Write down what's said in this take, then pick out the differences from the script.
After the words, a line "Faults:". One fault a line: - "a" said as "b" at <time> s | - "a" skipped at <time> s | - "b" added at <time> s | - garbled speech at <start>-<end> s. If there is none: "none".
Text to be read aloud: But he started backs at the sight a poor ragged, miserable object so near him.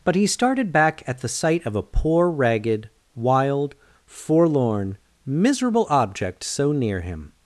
But he started back at the sight of a poor ragged, wild, forlorn, miserable object so near him.
Faults:
- "backs" said as "back" at 0.7 s
- "of" added at 1.6 s
- "wild forlorn" added at 3.1 s